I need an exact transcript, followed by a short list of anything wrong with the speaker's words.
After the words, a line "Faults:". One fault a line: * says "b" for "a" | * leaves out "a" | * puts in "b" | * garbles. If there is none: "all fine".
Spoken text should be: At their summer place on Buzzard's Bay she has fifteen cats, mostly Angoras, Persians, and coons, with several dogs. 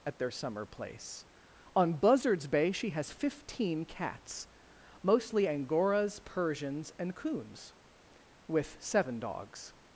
At their summer place on Buzzard's Bay she has fifteen cats, mostly Angoras, Persians, and coons, with seven dogs.
Faults:
* says "seven" for "several"